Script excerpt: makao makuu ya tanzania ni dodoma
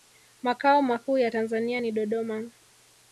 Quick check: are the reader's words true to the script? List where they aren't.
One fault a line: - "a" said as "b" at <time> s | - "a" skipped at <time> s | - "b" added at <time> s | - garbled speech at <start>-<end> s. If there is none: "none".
none